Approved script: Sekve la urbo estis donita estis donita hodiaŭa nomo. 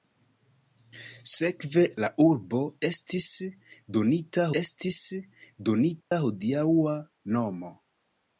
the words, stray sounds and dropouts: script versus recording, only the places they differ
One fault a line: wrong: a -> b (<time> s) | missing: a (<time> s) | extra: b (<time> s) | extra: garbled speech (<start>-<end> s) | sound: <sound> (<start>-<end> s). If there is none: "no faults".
sound: dropout (6.0-6.1 s)